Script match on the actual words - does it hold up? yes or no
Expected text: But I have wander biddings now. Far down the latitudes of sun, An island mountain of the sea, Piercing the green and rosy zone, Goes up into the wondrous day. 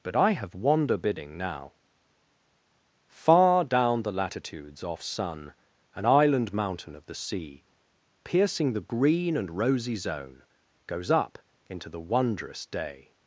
no